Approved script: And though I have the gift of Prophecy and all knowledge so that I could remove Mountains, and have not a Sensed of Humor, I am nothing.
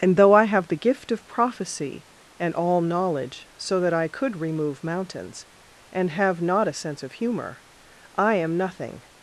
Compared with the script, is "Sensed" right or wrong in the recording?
wrong